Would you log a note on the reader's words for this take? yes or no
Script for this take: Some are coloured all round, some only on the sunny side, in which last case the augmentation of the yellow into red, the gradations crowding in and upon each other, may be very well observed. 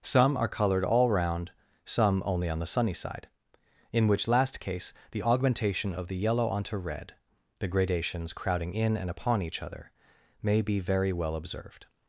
yes